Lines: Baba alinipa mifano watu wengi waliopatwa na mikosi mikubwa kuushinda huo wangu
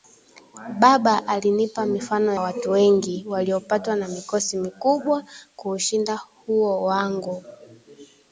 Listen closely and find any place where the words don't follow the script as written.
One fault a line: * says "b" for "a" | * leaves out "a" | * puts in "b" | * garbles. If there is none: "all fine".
all fine